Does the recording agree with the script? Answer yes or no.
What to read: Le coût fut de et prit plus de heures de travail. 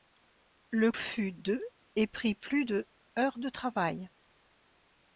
no